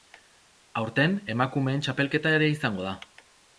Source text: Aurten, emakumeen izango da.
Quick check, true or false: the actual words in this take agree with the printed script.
false